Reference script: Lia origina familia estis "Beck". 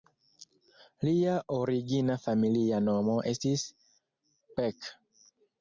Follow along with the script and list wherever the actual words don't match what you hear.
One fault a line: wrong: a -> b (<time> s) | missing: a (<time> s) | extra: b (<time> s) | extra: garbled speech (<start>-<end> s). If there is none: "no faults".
extra: nomo (2.9 s)